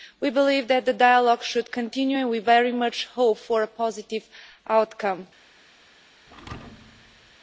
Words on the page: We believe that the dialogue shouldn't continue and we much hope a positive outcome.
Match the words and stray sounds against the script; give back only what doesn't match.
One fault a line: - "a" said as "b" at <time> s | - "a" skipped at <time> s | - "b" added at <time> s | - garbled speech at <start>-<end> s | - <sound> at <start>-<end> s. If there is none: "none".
- "shouldn't" said as "should" at 1.4 s
- "very" added at 2.4 s
- "for" added at 3.4 s
- thud at 6.3-7.4 s